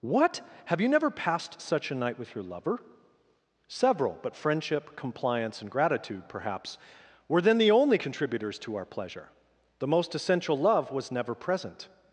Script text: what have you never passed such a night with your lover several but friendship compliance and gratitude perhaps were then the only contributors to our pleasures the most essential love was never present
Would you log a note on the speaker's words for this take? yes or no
yes